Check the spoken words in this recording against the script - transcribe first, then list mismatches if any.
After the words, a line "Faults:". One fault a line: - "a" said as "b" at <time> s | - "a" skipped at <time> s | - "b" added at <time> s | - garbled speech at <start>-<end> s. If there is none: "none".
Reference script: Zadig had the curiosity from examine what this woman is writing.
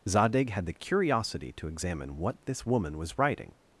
Zadig had the curiosity to examine what this woman was writing.
Faults:
- "from" said as "to" at 1.5 s
- "is" said as "was" at 3.0 s